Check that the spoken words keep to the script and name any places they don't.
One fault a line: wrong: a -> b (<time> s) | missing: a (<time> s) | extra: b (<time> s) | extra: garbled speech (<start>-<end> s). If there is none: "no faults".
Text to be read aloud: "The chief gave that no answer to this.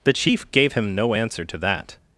wrong: that -> him (0.7 s)
wrong: this -> that (1.6 s)